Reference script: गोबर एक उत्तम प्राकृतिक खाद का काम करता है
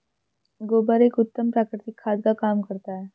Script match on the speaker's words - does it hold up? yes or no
yes